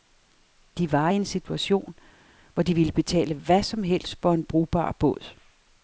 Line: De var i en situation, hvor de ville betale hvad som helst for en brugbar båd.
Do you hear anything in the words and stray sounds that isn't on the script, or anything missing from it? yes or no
no